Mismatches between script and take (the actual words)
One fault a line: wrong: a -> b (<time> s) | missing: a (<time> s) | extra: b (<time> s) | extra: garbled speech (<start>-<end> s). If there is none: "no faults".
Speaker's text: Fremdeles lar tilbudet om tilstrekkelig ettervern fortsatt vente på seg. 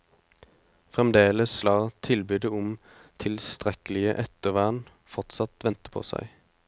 no faults